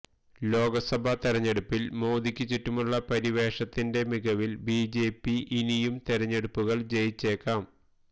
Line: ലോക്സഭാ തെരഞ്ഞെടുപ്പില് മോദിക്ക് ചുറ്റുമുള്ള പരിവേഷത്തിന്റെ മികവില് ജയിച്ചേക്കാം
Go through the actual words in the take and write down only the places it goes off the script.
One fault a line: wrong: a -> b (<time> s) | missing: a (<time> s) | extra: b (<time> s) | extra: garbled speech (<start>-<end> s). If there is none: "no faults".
extra: ബിജെപി ഇനിയും തെരഞ്ഞെടുപ്പുകള് (4.7 s)